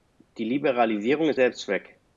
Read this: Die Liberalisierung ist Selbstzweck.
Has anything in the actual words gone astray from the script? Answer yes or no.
no